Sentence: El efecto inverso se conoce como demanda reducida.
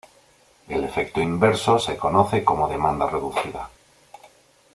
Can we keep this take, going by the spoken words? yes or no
yes